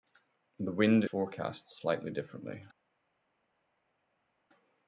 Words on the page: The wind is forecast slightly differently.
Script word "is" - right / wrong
wrong